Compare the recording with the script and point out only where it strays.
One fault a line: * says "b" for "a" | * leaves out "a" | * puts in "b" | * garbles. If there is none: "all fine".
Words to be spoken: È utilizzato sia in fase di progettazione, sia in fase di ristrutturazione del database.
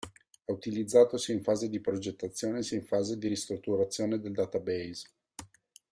all fine